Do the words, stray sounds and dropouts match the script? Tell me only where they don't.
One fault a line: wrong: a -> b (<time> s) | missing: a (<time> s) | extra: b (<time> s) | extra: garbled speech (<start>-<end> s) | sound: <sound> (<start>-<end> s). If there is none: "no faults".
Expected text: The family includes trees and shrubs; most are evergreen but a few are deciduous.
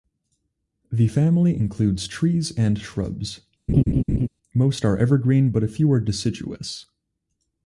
sound: laugh (3.7-4.3 s)